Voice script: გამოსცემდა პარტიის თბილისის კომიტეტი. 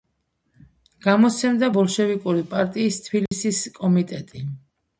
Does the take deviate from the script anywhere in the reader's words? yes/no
yes